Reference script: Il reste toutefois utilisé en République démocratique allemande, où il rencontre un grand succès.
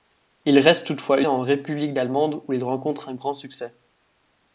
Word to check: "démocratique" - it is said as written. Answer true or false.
false